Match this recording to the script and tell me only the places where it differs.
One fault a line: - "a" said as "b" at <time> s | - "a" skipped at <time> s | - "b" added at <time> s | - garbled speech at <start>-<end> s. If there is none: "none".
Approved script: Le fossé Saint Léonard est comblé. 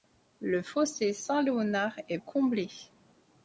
none